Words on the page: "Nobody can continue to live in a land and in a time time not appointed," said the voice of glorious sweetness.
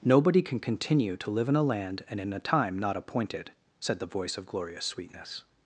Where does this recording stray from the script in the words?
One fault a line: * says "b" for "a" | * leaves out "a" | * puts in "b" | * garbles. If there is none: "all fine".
* leaves out "time"